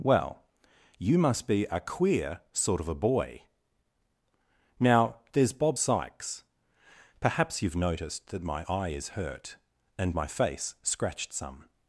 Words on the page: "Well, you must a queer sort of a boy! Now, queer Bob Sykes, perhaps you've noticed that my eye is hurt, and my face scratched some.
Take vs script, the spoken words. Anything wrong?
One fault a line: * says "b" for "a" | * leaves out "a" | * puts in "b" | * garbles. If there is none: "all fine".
* puts in "be"
* says "there's" for "queer"